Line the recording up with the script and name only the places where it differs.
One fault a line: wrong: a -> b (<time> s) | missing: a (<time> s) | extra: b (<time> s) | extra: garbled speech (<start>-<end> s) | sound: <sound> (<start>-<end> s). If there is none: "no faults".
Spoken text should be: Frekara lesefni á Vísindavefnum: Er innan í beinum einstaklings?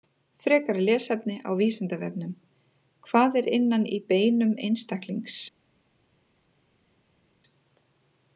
extra: Hvað (3.1 s)